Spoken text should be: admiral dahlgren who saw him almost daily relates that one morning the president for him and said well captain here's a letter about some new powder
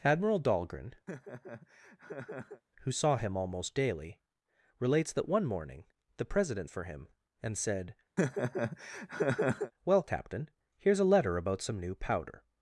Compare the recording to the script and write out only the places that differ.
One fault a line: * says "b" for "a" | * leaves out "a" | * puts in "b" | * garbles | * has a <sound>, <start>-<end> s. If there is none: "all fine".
* has a laugh, 1.1-2.6 s
* has a laugh, 8.2-9.7 s